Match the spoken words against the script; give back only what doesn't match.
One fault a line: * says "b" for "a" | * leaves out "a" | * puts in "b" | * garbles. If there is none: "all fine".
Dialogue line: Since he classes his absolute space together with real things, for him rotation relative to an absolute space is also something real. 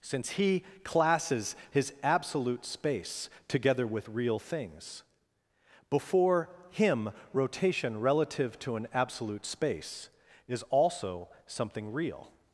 * says "before" for "for"